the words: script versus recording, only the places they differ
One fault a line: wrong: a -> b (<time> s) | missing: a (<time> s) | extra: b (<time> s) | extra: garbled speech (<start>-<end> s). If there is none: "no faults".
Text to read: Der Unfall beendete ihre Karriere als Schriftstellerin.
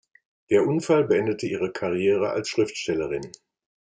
no faults